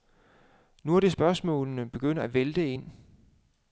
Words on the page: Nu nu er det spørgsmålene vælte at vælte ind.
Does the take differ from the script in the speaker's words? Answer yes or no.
yes